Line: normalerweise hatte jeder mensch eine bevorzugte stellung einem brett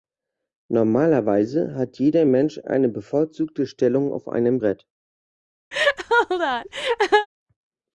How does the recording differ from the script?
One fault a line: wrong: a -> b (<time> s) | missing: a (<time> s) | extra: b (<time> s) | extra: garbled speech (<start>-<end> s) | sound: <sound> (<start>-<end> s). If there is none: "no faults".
wrong: hatte -> hat (1.8 s)
extra: auf (4.1 s)
sound: laugh (5.7-7.3 s)